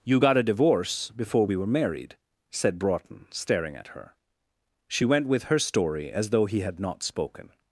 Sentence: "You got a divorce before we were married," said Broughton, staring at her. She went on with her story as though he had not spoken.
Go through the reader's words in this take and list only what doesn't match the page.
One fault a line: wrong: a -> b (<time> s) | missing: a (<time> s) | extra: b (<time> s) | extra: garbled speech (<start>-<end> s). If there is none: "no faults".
missing: on (5.3 s)